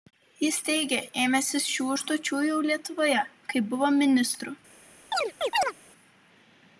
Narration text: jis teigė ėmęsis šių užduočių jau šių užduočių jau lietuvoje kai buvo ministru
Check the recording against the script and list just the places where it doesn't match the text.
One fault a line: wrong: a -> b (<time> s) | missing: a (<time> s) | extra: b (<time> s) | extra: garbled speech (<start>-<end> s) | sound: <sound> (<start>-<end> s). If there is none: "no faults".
missing: šių užduočių jau (2.6 s)
sound: chirp (5.1-5.7 s)